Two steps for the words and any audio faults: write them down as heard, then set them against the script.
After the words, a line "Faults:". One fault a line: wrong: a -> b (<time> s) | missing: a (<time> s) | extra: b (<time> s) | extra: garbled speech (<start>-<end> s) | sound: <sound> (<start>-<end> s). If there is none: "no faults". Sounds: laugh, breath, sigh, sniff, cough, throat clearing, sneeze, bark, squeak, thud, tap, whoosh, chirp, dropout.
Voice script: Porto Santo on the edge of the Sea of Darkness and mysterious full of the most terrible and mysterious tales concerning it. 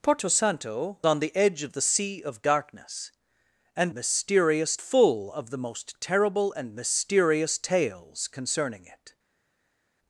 Porto Santo on the edge of the Sea of Darkness and mysterious full of the most terrible and mysterious tales concerning it.
Faults:
no faults